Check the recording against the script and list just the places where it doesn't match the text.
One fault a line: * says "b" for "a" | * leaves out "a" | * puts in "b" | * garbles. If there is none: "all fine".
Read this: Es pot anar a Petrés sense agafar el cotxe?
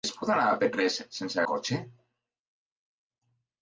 * leaves out "agafar el"